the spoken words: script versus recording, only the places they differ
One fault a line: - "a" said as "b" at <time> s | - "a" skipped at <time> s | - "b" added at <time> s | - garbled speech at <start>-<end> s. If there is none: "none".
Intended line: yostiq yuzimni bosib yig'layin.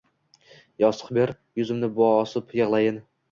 - "ber" added at 1.2 s